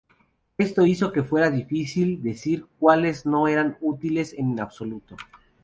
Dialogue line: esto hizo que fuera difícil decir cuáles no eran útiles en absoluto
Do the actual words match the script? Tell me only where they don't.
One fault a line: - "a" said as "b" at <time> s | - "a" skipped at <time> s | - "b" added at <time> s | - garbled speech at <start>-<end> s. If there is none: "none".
none